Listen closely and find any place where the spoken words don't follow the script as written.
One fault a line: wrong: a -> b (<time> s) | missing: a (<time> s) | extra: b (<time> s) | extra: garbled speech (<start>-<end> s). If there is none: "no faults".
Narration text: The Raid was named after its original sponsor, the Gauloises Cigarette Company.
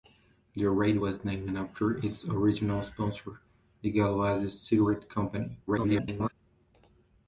extra: garbled speech (5.7-6.3 s)